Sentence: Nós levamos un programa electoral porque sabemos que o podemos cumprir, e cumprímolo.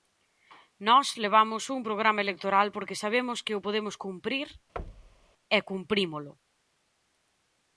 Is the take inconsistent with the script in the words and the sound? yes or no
yes